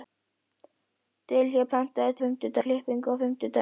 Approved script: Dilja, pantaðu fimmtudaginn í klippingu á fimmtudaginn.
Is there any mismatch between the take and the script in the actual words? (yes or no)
no